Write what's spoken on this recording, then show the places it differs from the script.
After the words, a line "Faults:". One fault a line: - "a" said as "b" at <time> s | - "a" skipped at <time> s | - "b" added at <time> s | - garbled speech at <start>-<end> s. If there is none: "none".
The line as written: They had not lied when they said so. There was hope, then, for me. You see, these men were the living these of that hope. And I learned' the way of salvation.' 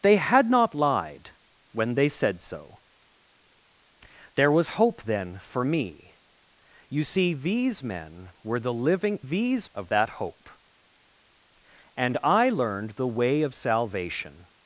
They had not lied when they said so. There was hope, then, for me. You see, these men were the living these of that hope. And I learned' the way of salvation.'
Faults:
none